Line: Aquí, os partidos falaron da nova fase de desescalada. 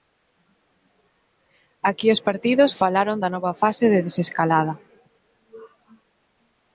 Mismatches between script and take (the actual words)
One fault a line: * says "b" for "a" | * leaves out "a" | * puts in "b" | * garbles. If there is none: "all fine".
all fine